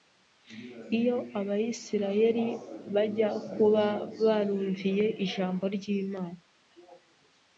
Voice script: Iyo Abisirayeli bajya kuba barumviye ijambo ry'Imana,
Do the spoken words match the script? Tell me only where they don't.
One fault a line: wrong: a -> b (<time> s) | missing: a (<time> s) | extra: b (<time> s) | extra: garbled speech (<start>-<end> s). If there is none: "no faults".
no faults